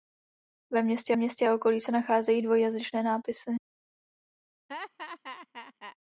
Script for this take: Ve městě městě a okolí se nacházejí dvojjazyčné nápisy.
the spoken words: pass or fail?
pass